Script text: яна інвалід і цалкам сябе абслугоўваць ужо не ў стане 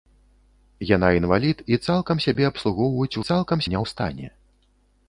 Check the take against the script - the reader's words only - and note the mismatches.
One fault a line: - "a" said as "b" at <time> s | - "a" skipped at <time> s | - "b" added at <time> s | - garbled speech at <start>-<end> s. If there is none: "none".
- "ужо" said as "цалкам" at 3.3 s